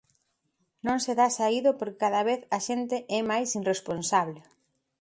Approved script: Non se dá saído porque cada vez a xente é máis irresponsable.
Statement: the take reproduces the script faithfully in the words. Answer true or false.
true